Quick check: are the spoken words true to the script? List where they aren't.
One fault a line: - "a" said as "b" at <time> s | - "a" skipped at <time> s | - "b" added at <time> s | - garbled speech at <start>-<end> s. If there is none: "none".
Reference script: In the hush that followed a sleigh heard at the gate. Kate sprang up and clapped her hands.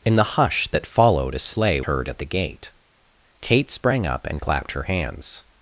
none